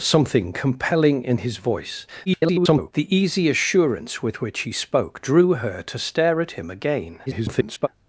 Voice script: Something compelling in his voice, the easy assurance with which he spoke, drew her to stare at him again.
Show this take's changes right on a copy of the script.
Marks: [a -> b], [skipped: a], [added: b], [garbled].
Something compelling in his voice, [garbled] the easy assurance with which he spoke, drew her to stare at him again. [garbled]